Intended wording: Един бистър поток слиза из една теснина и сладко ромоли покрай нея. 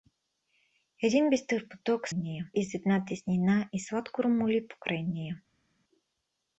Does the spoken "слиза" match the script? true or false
false